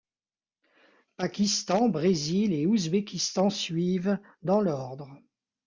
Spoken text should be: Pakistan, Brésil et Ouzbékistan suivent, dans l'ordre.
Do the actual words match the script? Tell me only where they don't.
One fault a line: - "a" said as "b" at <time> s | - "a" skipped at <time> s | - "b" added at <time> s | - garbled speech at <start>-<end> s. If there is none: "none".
none